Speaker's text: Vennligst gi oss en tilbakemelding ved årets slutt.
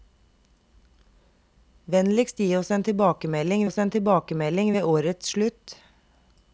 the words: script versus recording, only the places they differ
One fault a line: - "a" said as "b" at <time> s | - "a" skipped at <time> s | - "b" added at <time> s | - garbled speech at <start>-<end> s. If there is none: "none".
- "oss en tilbakemelding" added at 3.6 s